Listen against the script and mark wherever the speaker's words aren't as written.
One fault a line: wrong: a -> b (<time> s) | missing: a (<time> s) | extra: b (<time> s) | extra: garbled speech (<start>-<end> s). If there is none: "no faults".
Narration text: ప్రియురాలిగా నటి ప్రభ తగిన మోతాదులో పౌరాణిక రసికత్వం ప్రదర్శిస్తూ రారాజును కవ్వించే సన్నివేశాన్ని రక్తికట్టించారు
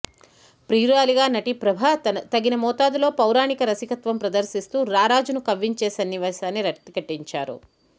no faults